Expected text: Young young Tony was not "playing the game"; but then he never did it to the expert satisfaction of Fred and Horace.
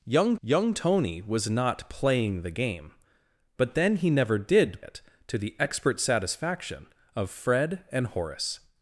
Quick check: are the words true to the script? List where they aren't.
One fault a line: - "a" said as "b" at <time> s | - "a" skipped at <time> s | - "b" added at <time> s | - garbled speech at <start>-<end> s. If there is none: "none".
none